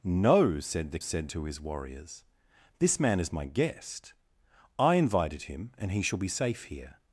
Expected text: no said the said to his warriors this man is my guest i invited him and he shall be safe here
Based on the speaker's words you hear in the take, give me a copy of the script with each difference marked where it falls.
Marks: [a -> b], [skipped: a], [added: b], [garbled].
no said the said to his warriors this man is my guest i invited him and he shall be safe here